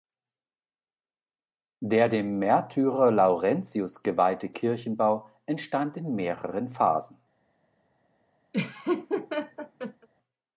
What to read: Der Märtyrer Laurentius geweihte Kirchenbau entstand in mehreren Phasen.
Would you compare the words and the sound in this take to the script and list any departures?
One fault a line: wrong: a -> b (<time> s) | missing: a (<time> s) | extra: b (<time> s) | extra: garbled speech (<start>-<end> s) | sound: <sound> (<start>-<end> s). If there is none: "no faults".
extra: dem (2.1 s)
sound: laugh (8.5-10.1 s)